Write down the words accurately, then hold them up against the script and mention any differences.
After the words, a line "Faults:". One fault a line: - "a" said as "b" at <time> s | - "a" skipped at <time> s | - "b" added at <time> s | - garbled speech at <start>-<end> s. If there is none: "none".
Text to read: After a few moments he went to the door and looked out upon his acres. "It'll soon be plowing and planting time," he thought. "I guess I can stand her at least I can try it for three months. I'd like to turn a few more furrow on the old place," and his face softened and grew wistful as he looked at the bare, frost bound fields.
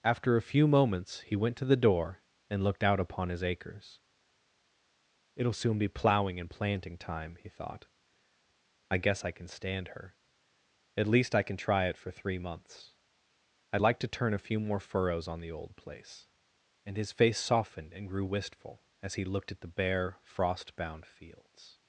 After a few moments he went to the door and looked out upon his acres. "It'll soon be plowing and planting time," he thought. "I guess I can stand her at least I can try it for three months. I'd like to turn a few more furrows on the old place," and his face softened and grew wistful as he looked at the bare, frost bound fields.
Faults:
- "furrow" said as "furrows" at 14.8 s